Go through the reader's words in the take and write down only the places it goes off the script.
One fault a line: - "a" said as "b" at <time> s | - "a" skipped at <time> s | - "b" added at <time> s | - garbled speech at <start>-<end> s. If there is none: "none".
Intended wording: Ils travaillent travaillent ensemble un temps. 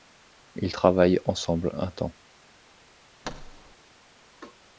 - "travaillent" skipped at 1.2 s